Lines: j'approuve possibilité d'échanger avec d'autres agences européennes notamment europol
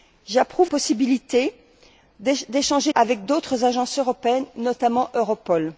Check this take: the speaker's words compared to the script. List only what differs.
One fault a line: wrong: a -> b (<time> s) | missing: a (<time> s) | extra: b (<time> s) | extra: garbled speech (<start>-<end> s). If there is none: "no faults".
no faults